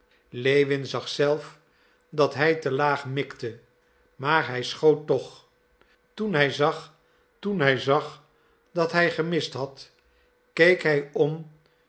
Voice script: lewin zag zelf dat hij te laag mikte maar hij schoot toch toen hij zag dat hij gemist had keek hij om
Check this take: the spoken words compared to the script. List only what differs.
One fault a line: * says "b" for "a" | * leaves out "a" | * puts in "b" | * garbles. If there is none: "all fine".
* puts in "toen hij zag"